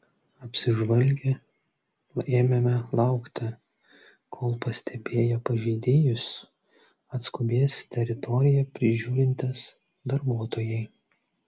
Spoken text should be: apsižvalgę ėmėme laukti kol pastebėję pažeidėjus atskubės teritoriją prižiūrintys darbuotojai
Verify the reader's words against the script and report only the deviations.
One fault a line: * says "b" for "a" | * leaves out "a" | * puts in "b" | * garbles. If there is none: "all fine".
all fine